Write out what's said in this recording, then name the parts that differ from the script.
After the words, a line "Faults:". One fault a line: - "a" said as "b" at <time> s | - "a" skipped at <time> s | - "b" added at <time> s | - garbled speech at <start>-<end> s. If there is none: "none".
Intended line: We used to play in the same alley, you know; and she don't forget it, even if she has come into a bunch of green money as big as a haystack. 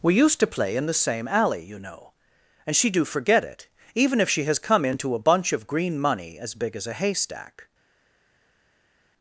We used to play in the same alley, you know; and she do forget it, even if she has come into a bunch of green money as big as a haystack.
Faults:
- "don't" said as "do" at 2.9 s